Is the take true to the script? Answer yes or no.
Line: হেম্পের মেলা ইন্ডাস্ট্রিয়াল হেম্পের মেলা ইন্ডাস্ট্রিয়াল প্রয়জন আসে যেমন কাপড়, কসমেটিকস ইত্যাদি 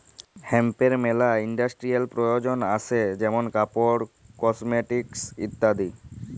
no